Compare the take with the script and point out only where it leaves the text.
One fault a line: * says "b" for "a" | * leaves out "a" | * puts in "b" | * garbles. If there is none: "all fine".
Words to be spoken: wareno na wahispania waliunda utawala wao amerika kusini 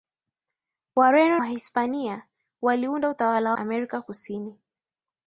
* leaves out "na"
* leaves out "wao"